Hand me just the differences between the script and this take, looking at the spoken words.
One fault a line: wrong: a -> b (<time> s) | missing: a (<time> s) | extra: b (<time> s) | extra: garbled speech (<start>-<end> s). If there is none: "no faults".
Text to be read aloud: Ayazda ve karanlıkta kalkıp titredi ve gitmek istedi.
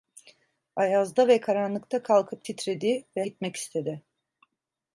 no faults